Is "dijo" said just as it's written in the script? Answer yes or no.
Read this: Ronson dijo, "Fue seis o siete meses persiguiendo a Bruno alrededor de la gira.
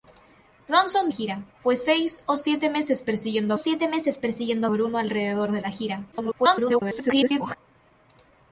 no